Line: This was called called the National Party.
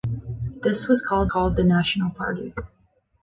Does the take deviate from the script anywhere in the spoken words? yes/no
no